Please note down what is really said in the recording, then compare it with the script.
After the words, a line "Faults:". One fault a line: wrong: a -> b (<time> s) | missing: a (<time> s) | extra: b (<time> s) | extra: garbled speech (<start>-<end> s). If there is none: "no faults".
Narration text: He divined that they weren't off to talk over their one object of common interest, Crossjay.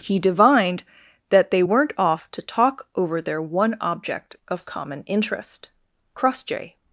He divined that they weren't off to talk over their one object of common interest, Crossjay.
Faults:
no faults